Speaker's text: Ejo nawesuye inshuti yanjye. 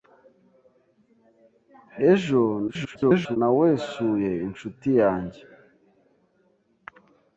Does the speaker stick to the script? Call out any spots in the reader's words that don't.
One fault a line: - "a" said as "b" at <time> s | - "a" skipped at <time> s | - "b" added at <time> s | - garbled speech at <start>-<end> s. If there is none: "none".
- garbled speech at 2.7-3.4 s